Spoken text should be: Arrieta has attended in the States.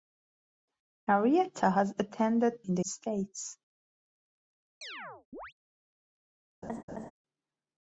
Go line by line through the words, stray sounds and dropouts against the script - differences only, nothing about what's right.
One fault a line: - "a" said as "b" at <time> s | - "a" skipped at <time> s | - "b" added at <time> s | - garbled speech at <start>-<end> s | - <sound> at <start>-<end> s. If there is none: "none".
- chirp at 4.8-5.5 s
- laugh at 6.6-7.1 s